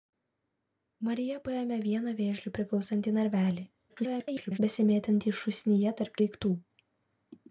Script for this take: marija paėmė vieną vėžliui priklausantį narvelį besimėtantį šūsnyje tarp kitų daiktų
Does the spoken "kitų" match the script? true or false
false